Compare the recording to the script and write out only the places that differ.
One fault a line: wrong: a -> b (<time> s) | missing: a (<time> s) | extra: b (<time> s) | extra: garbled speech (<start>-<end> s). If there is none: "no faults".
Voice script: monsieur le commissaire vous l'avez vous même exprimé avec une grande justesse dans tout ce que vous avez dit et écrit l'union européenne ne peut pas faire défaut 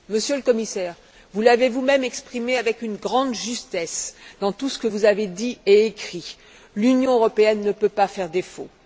no faults